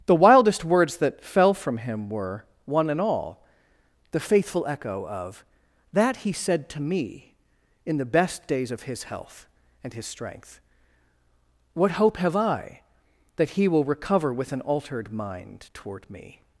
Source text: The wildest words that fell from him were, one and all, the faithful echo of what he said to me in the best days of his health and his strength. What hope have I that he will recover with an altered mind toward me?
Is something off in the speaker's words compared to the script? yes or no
yes